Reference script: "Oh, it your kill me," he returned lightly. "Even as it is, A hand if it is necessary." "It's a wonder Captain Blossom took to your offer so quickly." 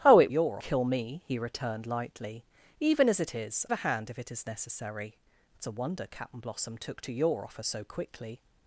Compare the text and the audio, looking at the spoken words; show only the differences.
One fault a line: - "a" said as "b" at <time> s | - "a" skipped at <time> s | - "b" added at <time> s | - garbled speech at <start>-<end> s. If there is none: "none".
none